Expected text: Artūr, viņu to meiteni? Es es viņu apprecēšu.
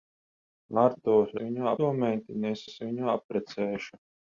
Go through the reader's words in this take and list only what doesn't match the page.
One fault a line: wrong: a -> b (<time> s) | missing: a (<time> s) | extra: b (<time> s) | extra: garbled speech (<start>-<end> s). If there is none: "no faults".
no faults